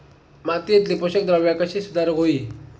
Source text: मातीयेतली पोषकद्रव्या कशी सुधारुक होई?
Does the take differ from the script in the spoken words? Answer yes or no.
no